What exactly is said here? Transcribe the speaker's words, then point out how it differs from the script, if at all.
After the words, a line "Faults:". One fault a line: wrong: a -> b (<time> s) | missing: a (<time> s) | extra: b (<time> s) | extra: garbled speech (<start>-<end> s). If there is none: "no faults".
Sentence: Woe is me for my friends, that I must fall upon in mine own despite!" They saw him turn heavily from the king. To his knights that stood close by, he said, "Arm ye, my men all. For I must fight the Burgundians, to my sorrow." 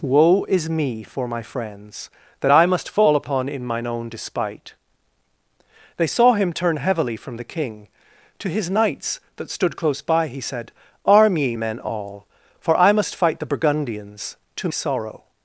Woe is me for my friends, that I must fall upon in mine own despite!" They saw him turn heavily from the king. To his knights that stood close by, he said, "Arm ye, men all. For I must fight the Burgundians, to sorrow."
Faults:
missing: my (11.6 s)
missing: my (14.7 s)